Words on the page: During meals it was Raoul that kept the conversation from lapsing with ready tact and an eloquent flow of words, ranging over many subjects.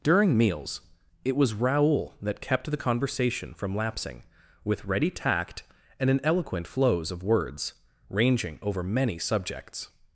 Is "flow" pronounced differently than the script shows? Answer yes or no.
yes